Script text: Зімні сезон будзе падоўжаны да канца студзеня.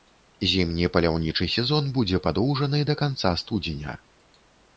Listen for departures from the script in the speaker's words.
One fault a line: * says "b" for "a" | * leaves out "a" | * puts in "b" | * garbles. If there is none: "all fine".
* puts in "паляўнічы"